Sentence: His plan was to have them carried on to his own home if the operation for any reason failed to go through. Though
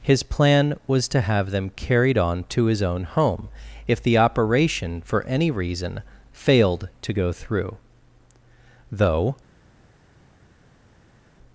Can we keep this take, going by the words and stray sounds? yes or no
yes